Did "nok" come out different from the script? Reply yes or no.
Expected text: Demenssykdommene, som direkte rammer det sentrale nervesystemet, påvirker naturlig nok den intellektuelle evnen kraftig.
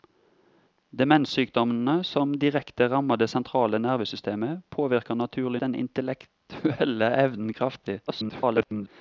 yes